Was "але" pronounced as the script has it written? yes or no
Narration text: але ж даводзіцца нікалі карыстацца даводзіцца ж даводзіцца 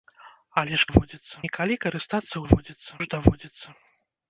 yes